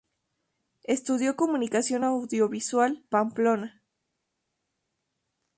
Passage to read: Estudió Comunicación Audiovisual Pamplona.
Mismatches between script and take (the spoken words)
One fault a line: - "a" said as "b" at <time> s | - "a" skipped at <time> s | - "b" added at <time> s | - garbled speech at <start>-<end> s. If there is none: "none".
none